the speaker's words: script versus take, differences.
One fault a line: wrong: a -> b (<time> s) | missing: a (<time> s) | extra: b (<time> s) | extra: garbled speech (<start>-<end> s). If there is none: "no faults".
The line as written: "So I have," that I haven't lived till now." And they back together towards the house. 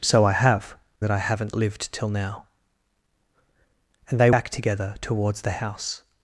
no faults